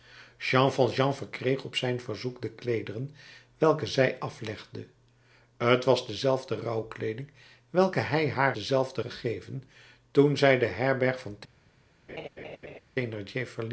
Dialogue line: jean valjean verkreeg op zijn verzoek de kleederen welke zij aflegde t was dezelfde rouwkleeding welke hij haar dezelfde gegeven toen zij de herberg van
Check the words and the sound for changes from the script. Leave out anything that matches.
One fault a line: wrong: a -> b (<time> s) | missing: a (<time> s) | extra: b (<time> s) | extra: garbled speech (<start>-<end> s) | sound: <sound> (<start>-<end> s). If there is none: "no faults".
sound: laugh (12.1-12.8 s)